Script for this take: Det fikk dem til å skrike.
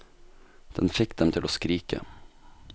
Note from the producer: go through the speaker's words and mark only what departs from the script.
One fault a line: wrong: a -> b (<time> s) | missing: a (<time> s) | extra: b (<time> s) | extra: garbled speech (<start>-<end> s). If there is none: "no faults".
wrong: Det -> Den (0.8 s)